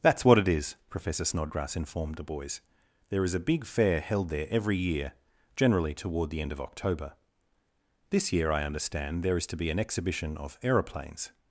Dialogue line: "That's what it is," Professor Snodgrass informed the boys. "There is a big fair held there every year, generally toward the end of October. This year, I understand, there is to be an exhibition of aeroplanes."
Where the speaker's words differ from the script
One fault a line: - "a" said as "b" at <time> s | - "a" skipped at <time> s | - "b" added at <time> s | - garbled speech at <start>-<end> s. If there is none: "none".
none